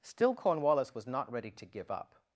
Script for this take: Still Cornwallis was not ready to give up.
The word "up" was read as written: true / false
true